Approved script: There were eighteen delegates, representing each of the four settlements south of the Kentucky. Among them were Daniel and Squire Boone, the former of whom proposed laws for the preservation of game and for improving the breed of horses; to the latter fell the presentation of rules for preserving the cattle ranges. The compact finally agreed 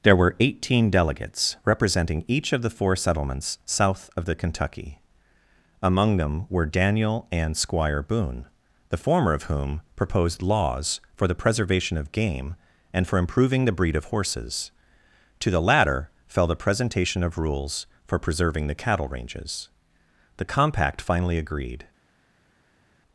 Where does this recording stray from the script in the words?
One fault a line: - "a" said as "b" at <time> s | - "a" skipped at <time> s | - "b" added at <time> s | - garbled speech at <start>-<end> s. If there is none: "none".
none